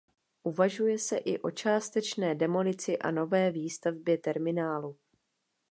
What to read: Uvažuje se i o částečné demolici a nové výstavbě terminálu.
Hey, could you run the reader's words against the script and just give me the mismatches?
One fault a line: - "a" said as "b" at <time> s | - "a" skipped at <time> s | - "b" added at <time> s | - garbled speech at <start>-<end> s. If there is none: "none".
none